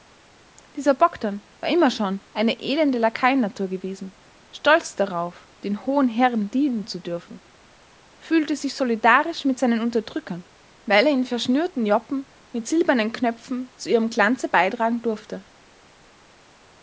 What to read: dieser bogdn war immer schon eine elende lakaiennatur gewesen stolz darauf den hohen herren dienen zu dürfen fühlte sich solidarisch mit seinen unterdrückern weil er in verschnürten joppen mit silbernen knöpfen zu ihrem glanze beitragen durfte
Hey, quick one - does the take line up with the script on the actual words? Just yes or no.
yes